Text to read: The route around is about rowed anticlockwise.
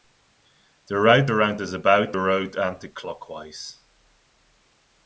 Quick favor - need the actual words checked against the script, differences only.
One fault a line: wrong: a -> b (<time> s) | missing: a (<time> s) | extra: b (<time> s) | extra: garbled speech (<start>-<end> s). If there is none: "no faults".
no faults